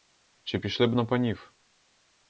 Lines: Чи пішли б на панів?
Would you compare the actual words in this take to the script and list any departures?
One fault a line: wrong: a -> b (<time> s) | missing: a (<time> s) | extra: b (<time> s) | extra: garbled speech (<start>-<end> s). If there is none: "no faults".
no faults